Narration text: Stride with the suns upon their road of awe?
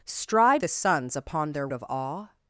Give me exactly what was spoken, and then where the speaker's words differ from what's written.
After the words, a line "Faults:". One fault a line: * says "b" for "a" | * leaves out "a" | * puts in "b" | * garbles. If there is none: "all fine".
Stride the suns upon their of awe?
Faults:
* leaves out "with"
* leaves out "road"